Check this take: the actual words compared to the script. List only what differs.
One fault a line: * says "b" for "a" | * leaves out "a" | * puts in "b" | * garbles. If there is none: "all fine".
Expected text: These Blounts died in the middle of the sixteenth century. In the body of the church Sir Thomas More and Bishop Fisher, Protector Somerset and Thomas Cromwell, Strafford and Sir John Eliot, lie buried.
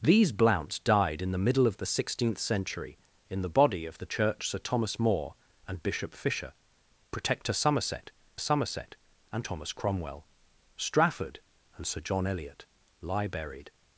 * puts in "Somerset"